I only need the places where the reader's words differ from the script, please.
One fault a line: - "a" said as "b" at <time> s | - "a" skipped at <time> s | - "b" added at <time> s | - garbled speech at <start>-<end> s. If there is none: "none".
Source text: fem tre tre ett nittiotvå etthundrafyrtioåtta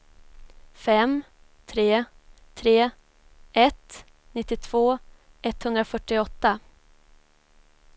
none